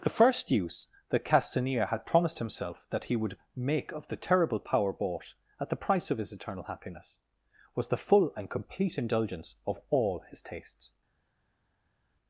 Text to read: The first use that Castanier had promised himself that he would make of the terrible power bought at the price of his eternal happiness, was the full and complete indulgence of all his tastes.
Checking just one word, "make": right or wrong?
right